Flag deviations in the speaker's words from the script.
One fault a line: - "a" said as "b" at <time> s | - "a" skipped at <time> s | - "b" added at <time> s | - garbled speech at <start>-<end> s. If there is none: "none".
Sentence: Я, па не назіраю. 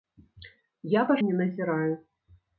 none